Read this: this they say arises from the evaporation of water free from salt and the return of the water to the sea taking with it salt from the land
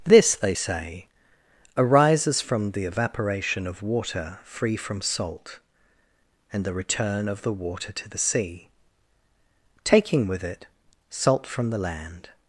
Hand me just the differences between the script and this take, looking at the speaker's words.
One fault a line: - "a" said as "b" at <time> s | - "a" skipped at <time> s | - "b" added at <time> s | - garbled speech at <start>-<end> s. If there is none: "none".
none